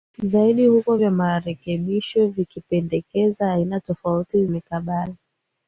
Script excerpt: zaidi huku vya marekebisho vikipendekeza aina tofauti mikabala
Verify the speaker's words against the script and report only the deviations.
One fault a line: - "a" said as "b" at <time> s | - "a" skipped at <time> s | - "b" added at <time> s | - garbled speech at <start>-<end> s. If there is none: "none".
none